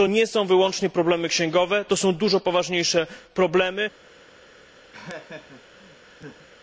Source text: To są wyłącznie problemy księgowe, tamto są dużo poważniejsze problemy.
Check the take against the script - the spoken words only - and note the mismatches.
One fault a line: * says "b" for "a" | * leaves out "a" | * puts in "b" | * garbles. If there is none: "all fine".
* puts in "nie"
* says "to" for "tamto"